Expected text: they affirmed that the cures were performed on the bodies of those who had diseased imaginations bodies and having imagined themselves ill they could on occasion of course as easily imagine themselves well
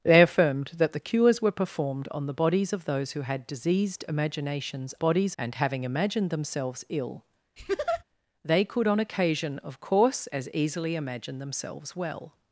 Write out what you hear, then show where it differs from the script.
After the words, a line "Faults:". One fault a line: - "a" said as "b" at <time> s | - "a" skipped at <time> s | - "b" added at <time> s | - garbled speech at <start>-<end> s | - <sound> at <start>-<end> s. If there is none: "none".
they affirmed that the cures were performed on the bodies of those who had diseased imaginations bodies and having imagined themselves ill they could on occasion of course as easily imagine themselves well
Faults:
- laugh at 7.6-8.0 s